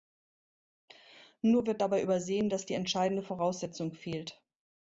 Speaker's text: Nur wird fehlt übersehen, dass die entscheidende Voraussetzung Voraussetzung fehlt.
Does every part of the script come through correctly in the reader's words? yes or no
no